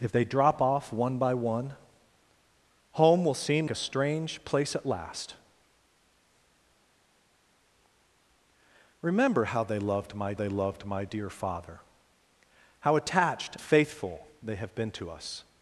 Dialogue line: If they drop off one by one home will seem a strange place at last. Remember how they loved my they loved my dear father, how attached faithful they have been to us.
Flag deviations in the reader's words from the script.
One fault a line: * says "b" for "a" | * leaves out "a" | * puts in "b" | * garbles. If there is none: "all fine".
all fine